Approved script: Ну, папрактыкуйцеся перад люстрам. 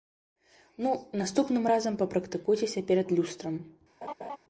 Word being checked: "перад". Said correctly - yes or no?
yes